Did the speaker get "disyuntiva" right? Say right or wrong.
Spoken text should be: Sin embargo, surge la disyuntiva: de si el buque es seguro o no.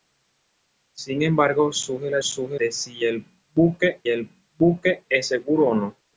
wrong